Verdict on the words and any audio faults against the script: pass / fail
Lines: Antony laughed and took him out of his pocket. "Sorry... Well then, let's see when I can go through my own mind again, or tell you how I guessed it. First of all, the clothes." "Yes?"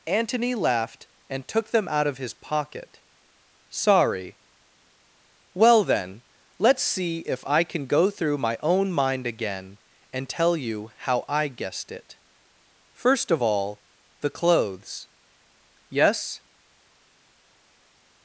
fail